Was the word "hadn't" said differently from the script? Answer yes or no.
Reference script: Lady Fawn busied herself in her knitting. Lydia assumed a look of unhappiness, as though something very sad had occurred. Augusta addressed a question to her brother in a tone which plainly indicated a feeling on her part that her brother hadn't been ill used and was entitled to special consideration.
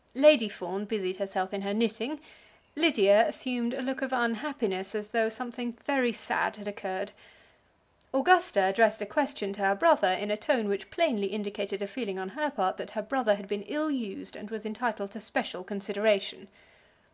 yes